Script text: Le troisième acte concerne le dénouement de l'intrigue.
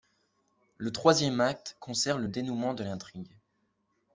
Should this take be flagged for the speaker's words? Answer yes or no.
no